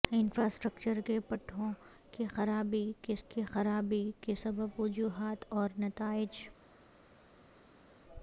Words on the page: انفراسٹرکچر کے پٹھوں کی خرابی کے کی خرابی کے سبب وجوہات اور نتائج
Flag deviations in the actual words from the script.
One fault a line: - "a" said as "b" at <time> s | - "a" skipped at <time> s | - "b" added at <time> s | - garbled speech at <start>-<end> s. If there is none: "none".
none